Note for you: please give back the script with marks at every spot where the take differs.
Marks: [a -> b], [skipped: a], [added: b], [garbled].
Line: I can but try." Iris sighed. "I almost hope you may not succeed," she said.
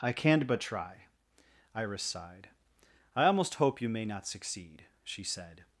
I can but try." Iris sighed. "I almost hope you may not succeed," she said.